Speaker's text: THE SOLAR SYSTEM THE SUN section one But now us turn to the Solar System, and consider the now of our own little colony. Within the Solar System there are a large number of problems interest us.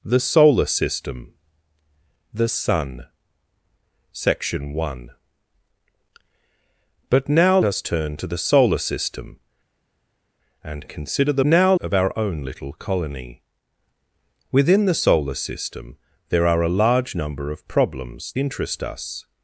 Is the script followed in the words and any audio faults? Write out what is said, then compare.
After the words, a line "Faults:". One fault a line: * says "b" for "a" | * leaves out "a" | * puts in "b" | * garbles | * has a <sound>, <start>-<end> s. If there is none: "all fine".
THE SOLAR SYSTEM THE SUN section one But now us turn to the Solar System, and consider the now of our own little colony. Within the Solar System there are a large number of problems interest us.
Faults:
all fine